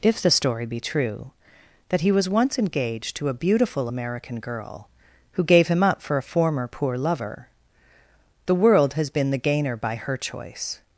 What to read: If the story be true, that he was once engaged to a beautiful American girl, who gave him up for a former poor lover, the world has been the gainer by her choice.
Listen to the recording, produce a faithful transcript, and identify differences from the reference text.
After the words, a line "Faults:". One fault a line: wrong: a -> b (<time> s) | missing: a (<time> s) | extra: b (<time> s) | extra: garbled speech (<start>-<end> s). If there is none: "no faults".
If the story be true, that he was once engaged to a beautiful American girl, who gave him up for a former poor lover, the world has been the gainer by her choice.
Faults:
no faults